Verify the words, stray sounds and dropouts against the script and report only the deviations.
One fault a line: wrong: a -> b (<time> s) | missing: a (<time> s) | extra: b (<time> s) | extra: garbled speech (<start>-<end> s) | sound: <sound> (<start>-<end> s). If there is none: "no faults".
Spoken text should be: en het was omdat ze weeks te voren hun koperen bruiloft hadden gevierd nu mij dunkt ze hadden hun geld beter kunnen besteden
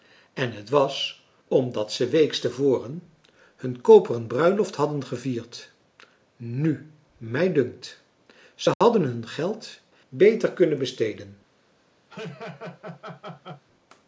sound: dropout (8.7-8.8 s)
sound: laugh (12.1-13.6 s)